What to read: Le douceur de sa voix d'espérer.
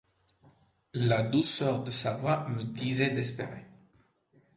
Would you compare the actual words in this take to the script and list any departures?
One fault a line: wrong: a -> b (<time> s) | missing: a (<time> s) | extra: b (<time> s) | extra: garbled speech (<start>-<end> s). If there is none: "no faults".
wrong: Le -> La (0.9 s)
extra: me disait (2.5 s)